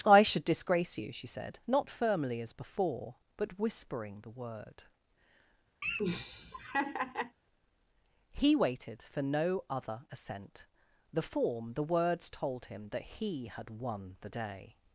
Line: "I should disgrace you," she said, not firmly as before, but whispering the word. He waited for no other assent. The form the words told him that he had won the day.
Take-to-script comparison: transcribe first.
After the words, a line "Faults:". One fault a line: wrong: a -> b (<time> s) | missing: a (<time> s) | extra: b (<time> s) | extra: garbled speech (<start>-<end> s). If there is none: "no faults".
"I should disgrace you," she said, not firmly as before, but whispering the word. He waited for no other assent. The form the words told him that he had won the day.
Faults:
no faults